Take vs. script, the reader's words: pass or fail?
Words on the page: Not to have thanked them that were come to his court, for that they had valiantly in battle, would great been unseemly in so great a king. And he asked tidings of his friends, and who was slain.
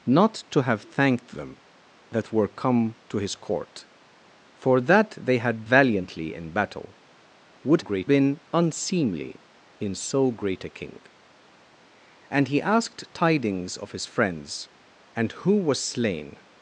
pass